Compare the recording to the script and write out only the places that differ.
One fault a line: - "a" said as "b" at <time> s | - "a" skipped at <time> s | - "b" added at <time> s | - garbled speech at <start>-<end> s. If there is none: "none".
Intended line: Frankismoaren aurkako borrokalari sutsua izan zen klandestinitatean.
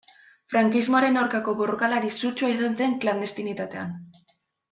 none